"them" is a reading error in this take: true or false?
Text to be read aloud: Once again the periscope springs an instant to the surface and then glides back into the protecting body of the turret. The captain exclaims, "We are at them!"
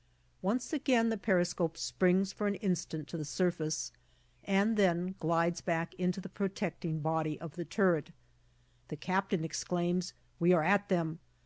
false